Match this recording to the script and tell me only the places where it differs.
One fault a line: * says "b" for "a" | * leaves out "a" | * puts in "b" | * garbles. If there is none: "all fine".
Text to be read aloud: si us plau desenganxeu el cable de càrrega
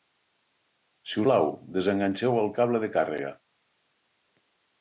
* leaves out "us"